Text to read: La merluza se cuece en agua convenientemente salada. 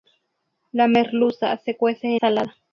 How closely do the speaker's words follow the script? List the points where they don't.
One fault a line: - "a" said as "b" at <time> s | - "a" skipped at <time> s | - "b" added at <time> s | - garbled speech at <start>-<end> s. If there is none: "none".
- "en agua convenientemente" skipped at 2.2 s